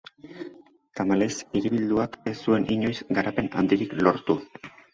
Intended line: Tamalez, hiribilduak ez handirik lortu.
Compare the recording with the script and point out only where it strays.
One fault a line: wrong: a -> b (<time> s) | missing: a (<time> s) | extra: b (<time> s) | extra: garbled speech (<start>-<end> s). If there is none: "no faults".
extra: zuen inoiz garapen (2.5 s)